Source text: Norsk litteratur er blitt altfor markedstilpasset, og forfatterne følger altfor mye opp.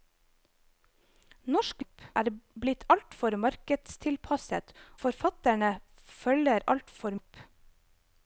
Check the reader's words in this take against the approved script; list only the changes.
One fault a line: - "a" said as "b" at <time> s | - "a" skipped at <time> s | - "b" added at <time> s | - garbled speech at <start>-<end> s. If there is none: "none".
- "litteratur" said as "opp" at 1.8 s
- "og" skipped at 4.7 s
- "mye" skipped at 7.2 s